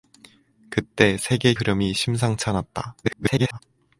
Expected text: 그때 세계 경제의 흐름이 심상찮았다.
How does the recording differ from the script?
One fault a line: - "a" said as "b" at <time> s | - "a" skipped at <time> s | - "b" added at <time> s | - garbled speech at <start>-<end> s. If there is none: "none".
- "경제의" skipped at 1.5 s
- garbled speech at 3.0-3.6 s